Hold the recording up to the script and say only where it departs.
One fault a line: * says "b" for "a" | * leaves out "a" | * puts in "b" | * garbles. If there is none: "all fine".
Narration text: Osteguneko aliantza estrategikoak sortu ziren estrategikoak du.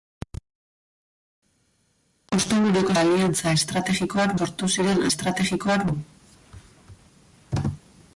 all fine